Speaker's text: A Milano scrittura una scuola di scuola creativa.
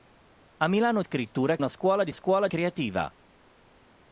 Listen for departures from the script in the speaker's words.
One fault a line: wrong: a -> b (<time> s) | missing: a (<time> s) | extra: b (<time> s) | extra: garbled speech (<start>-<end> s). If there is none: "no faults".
no faults